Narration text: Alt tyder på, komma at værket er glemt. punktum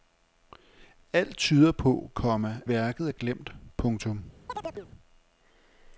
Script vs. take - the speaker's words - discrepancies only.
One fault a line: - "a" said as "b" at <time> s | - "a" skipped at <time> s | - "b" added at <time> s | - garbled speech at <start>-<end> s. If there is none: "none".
- "at" skipped at 2.6 s